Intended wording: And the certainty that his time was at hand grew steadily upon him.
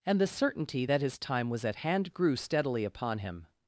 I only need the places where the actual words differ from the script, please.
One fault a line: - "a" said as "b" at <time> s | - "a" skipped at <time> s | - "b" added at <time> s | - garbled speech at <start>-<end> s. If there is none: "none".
none